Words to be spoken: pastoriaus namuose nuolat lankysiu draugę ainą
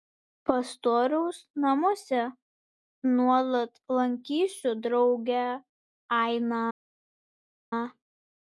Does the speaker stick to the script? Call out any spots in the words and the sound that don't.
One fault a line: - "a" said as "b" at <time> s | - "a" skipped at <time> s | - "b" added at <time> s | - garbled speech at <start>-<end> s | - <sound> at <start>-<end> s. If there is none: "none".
none